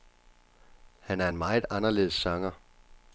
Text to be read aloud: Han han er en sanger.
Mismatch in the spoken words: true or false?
true